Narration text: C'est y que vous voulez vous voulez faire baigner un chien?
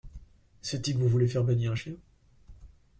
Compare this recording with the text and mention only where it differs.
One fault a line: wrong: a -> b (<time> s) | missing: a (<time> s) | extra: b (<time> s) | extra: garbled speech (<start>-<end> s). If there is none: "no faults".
missing: vous voulez (1.3 s)